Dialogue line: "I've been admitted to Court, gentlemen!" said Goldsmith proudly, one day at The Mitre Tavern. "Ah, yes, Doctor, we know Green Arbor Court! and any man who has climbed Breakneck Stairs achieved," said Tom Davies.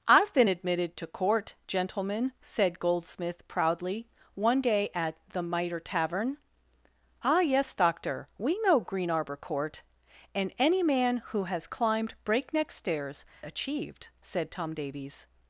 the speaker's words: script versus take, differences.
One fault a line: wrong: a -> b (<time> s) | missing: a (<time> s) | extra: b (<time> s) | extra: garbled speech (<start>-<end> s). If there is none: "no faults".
no faults